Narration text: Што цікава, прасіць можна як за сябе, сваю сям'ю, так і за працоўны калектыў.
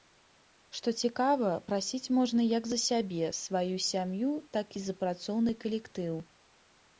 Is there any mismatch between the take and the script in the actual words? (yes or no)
no